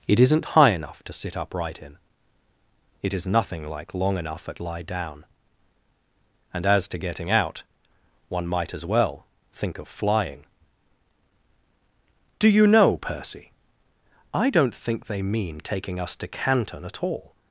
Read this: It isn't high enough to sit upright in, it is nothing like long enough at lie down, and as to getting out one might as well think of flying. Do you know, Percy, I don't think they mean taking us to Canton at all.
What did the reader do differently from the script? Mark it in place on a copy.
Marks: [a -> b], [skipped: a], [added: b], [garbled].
It isn't high enough to sit upright in, it is nothing like long enough at lie down, and as to getting out one might as well think of flying. Do you know, Percy, I don't think they mean taking us to Canton at all.